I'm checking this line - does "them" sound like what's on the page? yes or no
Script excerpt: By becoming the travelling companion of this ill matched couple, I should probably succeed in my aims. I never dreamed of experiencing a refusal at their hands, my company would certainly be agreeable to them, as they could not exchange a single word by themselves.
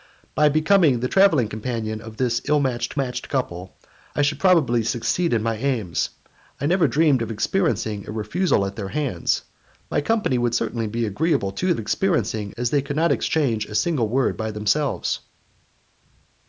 no